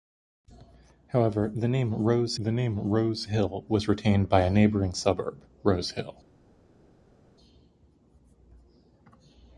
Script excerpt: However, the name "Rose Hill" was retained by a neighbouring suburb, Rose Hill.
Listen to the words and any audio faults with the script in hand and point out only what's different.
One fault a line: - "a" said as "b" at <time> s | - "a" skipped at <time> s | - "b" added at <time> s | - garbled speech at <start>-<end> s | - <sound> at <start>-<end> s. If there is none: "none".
- "the name Rose" added at 2.4 s